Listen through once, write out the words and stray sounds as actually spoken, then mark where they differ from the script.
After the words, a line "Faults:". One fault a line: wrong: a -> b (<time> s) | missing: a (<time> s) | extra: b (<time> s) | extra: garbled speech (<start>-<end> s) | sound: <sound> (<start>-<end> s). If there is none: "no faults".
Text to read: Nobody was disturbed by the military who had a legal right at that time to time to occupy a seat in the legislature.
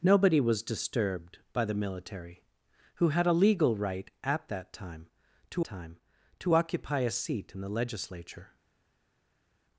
Nobody was disturbed by the military who had a legal right at that time to time to occupy a seat in the legislature.
Faults:
no faults